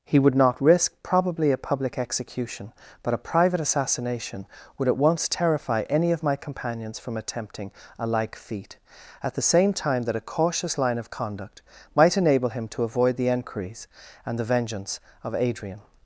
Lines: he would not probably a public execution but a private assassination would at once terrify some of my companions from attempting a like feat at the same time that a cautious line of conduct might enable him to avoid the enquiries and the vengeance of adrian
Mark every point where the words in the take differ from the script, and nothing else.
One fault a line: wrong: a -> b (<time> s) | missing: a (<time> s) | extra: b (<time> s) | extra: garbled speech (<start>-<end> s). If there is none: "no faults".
extra: risk (0.6 s)
wrong: some -> any (5.8 s)